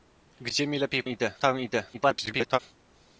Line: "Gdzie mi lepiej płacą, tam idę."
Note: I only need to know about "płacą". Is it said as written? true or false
false